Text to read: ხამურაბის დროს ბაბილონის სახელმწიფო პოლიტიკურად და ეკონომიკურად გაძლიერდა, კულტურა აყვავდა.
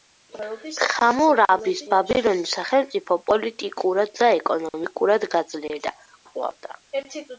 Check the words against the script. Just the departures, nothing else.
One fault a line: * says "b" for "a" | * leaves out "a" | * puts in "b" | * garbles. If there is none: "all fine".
* leaves out "დროს"
* leaves out "კულტურა"